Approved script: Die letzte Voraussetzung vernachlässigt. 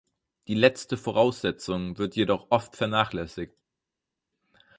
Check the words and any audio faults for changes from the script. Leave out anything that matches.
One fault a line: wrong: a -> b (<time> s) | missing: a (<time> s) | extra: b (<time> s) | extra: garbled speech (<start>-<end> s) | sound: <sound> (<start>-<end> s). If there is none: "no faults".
extra: wird jedoch oft (2.0 s)